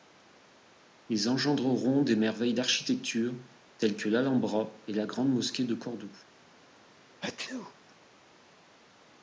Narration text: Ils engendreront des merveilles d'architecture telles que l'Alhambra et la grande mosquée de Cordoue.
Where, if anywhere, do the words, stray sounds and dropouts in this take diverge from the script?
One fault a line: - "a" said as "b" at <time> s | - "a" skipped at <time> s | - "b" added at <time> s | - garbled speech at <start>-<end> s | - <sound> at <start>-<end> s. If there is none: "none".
- sneeze at 7.2-7.7 s